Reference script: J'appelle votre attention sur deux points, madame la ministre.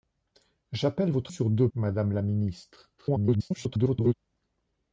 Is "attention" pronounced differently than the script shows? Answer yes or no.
yes